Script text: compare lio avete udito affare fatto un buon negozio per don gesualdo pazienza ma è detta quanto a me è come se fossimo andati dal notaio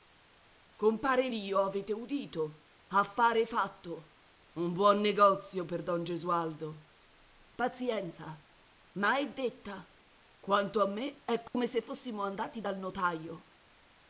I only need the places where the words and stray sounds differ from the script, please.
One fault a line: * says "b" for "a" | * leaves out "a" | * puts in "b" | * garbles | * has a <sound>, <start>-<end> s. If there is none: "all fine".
* has a dropout, 11.5-11.5 s